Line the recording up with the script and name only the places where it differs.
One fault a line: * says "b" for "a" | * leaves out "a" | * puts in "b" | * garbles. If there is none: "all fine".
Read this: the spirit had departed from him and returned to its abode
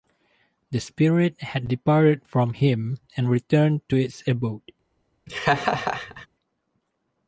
all fine